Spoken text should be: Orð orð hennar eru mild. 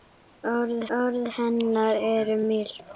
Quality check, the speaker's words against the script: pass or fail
pass